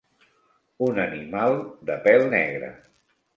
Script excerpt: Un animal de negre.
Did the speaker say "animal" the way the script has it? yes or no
yes